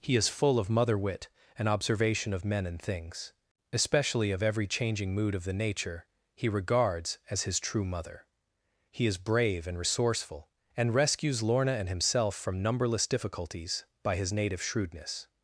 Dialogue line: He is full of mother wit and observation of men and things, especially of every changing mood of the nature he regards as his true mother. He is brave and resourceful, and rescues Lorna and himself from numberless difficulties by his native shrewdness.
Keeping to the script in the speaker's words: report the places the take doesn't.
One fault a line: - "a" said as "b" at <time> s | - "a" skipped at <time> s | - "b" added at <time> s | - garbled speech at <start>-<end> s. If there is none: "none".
none